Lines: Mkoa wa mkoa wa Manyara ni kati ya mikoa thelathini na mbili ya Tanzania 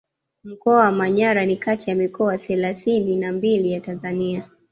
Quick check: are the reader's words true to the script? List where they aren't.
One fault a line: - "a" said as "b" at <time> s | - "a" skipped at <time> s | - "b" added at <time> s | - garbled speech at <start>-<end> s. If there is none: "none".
- "mkoa wa" skipped at 0.9 s